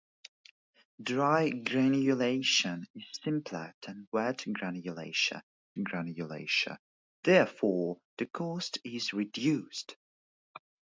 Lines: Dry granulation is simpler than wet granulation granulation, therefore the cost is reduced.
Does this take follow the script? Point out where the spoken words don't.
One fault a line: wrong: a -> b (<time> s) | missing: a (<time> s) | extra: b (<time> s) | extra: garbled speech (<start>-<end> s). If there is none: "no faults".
no faults